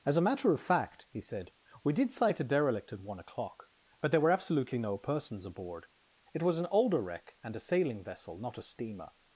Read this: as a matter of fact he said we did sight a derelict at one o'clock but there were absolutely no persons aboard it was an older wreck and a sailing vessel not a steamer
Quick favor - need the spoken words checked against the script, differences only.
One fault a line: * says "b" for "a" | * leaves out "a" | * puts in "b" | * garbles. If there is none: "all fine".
all fine